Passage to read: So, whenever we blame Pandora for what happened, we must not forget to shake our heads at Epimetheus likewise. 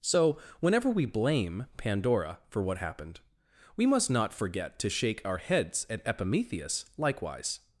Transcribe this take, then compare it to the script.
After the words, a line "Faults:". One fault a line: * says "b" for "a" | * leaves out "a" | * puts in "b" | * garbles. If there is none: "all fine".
So, whenever we blame Pandora for what happened, we must not forget to shake our heads at Epimetheus likewise.
Faults:
all fine